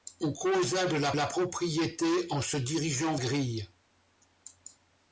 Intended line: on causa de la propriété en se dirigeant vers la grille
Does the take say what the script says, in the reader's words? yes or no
no